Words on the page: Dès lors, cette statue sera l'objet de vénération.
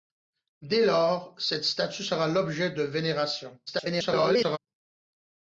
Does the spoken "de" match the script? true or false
true